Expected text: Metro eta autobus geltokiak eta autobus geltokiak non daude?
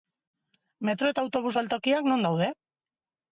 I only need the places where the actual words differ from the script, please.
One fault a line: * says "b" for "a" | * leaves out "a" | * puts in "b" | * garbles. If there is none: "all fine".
* leaves out "eta autobus geltokiak"